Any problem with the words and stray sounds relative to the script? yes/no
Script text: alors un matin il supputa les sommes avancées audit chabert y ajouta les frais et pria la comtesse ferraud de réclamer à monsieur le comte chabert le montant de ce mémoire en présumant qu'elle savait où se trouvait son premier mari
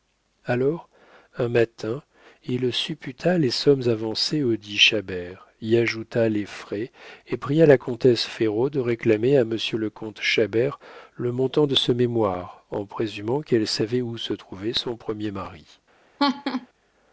yes